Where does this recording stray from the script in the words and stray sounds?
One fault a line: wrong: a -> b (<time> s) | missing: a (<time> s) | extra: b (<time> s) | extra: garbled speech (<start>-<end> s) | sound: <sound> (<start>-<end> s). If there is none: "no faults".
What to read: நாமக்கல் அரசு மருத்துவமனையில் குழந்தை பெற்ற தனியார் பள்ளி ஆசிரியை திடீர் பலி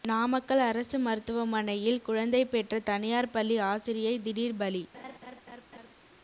sound: laugh (4.9-5.9 s)